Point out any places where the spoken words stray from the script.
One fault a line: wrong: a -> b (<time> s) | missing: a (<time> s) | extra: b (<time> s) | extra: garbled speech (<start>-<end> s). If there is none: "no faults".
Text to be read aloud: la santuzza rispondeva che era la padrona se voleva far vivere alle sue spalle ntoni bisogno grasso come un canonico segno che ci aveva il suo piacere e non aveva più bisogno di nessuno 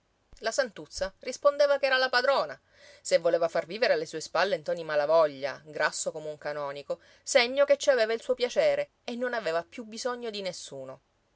wrong: bisogno -> malavoglia (4.8 s)